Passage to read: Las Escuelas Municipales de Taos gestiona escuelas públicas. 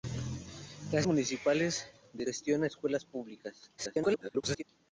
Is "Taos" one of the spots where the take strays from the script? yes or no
yes